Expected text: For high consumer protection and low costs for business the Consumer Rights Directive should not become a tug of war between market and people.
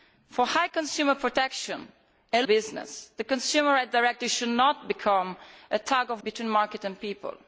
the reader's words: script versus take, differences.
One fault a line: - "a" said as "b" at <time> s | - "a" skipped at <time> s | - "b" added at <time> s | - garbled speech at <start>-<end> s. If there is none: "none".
- "low costs for" skipped at 2.5 s
- "war" skipped at 6.2 s